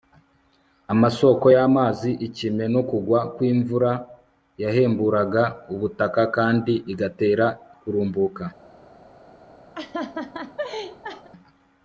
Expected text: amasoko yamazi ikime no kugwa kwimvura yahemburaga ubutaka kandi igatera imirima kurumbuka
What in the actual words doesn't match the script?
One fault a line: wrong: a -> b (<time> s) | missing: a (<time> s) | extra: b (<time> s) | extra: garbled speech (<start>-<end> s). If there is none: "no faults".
missing: imirima (7.5 s)